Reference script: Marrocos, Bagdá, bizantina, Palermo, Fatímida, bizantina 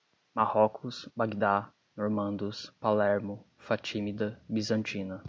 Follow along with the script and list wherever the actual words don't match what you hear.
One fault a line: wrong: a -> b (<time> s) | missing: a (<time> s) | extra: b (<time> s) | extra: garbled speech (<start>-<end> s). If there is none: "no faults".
wrong: bizantina -> normandos (2.0 s)